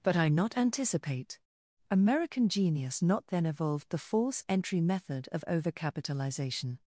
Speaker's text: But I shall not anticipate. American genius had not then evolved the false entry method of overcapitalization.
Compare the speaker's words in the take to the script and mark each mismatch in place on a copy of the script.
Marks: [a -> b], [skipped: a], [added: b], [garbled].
But I [skipped: shall] not anticipate. American genius [skipped: had] not then evolved the false entry method of overcapitalization.